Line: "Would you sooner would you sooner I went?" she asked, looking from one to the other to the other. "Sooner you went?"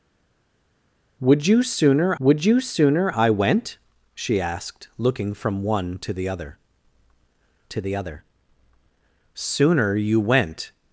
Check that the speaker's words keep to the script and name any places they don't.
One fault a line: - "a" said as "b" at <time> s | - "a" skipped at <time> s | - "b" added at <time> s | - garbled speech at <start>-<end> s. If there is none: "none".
none